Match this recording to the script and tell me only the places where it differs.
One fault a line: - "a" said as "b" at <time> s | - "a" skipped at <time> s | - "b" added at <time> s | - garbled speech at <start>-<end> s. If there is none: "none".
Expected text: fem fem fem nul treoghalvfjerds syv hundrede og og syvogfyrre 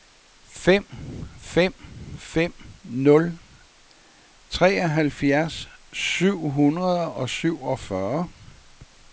- "og" skipped at 7.3 s